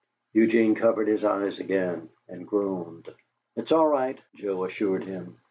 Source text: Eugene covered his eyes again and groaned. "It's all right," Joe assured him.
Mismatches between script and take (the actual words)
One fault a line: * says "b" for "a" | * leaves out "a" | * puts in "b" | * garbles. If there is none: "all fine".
all fine